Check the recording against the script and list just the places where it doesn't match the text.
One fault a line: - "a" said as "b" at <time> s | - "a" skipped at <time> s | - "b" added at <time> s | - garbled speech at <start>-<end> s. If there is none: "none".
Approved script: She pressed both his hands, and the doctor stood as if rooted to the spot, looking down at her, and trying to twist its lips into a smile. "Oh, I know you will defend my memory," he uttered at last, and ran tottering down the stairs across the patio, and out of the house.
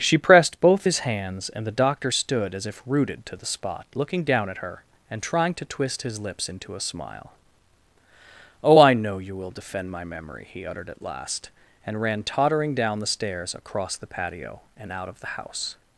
- "its" said as "his" at 6.0 s